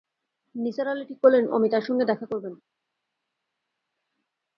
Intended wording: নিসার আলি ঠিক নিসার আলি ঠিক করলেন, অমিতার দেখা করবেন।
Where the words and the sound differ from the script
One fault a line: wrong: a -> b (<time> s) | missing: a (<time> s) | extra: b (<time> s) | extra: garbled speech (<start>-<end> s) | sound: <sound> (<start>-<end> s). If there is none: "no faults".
missing: নিসার আলি ঠিক (1.2 s)
extra: সঙ্গে (1.8 s)